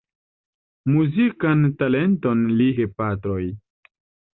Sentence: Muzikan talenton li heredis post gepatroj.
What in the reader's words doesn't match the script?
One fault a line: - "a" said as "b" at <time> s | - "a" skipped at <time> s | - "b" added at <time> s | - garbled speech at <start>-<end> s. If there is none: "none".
- "heredis post" skipped at 2.7 s